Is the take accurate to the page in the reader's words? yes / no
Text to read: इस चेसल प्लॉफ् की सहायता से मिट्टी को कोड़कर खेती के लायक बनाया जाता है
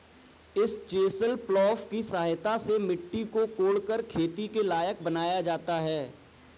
yes